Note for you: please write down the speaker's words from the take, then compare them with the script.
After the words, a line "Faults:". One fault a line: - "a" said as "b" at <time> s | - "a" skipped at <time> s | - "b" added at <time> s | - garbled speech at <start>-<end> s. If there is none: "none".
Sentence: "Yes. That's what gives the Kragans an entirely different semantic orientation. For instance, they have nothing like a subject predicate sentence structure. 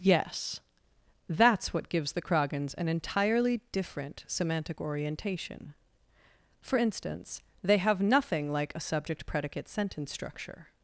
"Yes. That's what gives the Kragans an entirely different semantic orientation. For instance, they have nothing like a subject predicate sentence structure.
Faults:
none